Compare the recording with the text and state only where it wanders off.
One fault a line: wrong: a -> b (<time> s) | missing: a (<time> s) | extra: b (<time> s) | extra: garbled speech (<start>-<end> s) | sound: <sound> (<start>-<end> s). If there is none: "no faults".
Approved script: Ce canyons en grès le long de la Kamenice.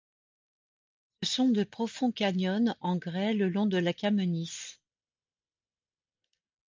extra: sont de profonds (1.3 s)